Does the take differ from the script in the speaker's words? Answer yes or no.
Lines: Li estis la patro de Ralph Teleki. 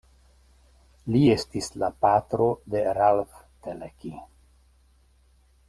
no